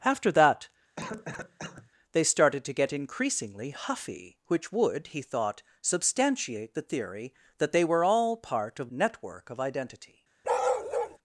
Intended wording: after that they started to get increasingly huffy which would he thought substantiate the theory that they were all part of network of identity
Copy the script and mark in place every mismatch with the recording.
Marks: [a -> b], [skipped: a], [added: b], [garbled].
after that they started to get increasingly huffy which would he thought substantiate the theory that they were all part of network of identity